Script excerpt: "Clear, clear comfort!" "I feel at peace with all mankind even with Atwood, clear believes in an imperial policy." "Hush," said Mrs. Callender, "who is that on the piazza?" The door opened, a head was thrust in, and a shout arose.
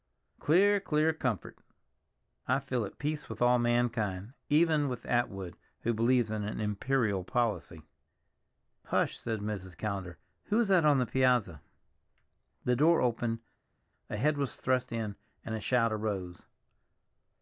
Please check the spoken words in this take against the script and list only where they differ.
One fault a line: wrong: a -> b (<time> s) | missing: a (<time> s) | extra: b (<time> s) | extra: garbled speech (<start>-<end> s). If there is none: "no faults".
wrong: clear -> who (5.8 s)